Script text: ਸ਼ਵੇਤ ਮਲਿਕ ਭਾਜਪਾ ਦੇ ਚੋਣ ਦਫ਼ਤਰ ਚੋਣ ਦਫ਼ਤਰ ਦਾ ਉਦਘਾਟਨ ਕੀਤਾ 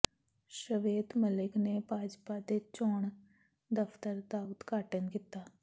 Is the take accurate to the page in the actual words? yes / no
no